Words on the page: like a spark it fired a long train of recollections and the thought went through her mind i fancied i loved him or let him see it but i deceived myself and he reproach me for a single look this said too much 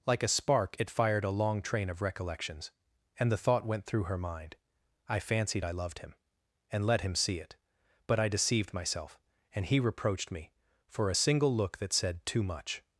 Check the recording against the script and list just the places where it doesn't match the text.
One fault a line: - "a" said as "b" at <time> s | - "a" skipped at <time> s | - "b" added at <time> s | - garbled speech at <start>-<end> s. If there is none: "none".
- "or" said as "and" at 6.7 s
- "reproach" said as "reproached" at 9.8 s
- "this" said as "that" at 11.8 s